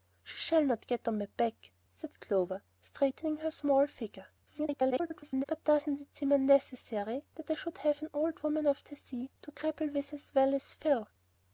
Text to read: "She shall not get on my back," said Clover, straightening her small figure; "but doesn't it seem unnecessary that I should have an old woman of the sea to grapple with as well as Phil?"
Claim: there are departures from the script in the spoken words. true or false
true